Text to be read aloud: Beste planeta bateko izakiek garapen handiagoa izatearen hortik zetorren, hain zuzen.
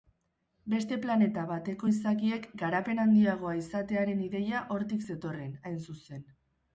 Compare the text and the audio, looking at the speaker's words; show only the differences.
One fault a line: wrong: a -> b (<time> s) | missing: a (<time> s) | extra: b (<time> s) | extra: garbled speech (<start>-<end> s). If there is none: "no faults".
extra: ideia (4.3 s)